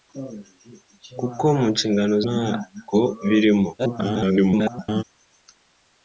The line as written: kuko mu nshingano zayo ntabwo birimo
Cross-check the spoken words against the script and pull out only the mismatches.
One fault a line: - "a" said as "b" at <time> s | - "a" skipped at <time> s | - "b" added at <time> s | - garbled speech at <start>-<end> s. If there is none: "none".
- "zayo" skipped at 2.1 s
- garbled speech at 3.8-5.0 s